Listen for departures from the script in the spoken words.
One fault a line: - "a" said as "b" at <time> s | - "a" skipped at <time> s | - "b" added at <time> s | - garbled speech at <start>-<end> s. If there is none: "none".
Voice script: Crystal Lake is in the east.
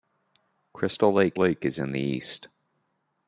- "Lake" added at 1.4 s